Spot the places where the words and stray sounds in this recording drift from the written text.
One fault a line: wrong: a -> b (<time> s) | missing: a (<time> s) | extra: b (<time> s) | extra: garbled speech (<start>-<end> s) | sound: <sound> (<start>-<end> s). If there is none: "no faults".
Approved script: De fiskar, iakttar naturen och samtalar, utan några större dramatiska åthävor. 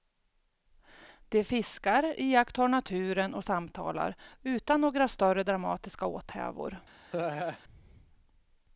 sound: laugh (7.1-7.6 s)